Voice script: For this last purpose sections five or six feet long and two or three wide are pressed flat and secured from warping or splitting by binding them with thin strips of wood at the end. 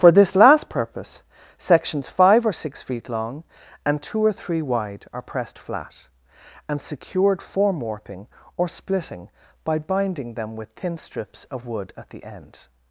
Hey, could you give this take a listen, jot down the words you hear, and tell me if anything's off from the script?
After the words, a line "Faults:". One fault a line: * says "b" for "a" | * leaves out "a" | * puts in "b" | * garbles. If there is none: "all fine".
For this last purpose sections five or six feet long and two or three wide are pressed flat and secured form warping or splitting by binding them with thin strips of wood at the end.
Faults:
* says "form" for "from"